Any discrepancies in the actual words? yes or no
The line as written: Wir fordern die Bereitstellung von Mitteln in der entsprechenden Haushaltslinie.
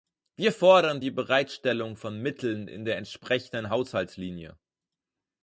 no